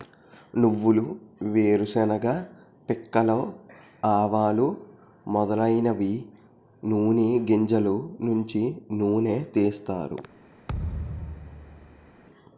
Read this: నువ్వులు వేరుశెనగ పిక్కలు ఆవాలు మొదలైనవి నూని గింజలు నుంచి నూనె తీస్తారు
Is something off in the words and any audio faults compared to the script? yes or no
yes